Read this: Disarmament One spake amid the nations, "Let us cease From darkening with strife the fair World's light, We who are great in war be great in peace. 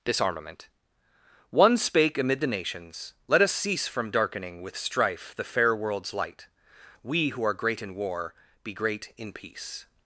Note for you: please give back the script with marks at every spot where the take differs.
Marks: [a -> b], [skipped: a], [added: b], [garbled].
Disarmament One spake amid the nations, "Let us cease From darkening with strife the fair World's light, We who are great in war be great in peace.